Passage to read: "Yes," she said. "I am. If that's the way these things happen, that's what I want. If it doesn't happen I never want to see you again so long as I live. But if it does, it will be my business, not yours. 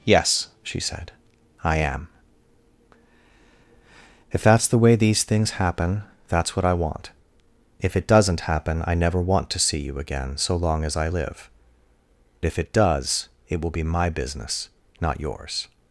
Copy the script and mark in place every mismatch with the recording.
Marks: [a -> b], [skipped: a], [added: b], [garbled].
"Yes," she said. "I am. If that's the way these things happen, that's what I want. If it doesn't happen I never want to see you again so long as I live. [skipped: But] if it does, it will be my business, not yours.